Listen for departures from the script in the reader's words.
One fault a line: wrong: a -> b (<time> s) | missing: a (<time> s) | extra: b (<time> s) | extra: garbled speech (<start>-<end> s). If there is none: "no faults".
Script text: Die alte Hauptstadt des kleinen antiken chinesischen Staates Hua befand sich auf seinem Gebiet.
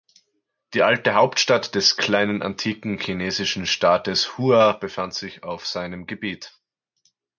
no faults